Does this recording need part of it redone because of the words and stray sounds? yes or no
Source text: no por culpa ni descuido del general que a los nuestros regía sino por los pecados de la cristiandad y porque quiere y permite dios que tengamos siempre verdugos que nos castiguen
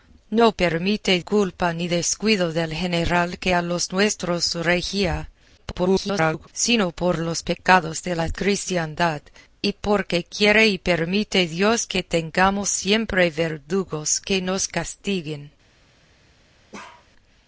yes